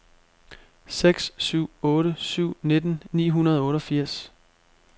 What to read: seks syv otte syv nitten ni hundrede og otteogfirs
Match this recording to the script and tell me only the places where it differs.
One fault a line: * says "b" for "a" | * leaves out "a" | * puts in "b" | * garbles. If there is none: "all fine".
all fine